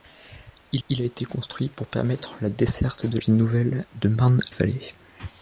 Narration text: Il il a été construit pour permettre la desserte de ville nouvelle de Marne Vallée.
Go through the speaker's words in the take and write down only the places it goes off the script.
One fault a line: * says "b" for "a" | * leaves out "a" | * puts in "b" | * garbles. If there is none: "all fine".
all fine